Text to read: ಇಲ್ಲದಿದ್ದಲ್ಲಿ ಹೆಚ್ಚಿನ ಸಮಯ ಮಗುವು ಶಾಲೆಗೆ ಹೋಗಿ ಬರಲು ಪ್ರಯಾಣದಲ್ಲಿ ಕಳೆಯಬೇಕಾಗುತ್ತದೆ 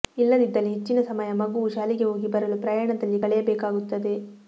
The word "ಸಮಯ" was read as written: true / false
true